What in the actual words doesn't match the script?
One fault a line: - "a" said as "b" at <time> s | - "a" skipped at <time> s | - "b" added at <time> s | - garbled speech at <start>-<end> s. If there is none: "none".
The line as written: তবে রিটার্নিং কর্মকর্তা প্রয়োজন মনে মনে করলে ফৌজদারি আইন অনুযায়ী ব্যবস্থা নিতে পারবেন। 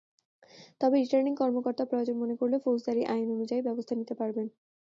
- "মনে" skipped at 2.4 s